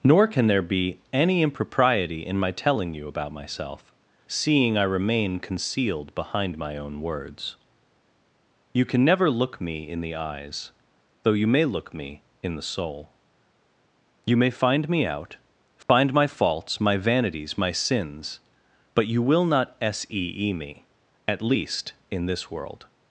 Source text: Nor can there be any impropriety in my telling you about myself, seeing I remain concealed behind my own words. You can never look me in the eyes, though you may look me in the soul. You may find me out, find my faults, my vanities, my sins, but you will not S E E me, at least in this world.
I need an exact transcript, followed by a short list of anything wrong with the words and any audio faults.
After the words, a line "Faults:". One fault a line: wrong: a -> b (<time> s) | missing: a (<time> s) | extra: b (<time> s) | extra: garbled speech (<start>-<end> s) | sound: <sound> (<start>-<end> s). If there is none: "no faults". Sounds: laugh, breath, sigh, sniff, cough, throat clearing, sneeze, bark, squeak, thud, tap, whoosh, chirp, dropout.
Nor can there be any impropriety in my telling you about myself, seeing I remain concealed behind my own words. You can never look me in the eyes, though you may look me in the soul. You may find me out, find my faults, my vanities, my sins, but you will not S E E me, at least in this world.
Faults:
sound: dropout (15.8-15.9 s)